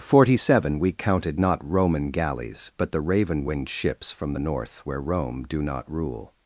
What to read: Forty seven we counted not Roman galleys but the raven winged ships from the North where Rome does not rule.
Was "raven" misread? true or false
false